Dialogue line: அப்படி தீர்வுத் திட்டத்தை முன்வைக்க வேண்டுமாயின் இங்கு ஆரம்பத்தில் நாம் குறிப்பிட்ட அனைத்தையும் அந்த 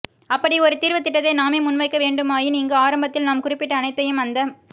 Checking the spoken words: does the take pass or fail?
fail